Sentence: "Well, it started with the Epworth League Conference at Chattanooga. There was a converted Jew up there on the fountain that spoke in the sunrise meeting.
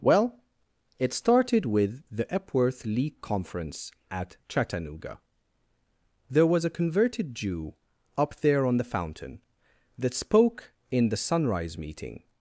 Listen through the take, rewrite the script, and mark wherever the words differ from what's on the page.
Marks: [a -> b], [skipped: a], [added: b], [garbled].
"Well, it started with the Epworth League Conference at Chattanooga. There was a converted Jew up there on the fountain that spoke in the sunrise meeting.